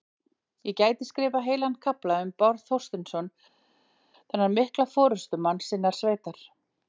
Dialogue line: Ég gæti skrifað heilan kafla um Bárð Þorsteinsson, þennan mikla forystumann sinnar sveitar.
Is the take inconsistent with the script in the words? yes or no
no